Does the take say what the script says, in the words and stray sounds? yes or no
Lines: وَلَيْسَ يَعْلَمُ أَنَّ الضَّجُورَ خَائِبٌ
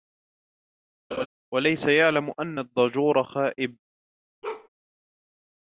no